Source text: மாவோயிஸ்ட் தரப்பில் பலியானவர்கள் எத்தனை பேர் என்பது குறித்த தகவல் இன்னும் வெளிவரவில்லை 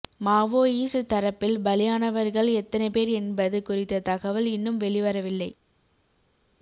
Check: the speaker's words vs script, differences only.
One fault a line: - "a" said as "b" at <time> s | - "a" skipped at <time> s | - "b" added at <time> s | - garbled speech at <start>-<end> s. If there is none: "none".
none